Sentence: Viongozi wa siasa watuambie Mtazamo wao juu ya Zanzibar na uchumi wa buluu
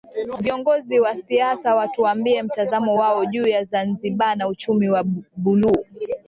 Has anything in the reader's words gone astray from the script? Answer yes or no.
no